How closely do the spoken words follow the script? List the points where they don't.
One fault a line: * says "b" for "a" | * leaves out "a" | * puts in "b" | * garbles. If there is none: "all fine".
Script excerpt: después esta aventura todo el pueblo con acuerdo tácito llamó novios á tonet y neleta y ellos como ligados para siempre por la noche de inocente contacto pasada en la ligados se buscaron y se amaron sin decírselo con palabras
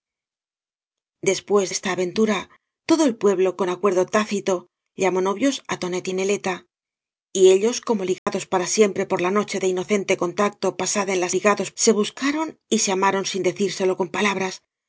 all fine